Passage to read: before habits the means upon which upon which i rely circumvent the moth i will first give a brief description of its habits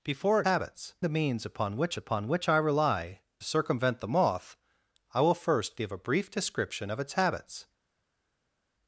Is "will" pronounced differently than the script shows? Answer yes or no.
no